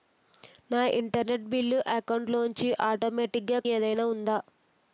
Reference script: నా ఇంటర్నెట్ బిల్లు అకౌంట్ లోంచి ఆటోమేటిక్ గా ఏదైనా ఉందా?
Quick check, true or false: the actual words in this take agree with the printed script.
true